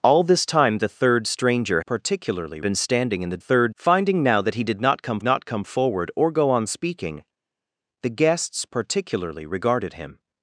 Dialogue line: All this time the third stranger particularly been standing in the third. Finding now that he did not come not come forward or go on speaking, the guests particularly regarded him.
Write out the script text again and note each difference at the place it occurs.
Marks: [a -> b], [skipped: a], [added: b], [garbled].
All this time the third stranger particularly been standing in the third. Finding now that he did not come not come forward or go on speaking, the guests particularly regarded him.